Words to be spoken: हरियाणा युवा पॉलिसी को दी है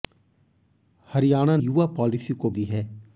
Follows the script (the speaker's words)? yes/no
yes